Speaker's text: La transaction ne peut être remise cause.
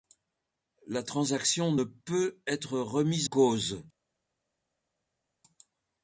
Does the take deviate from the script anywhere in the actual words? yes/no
no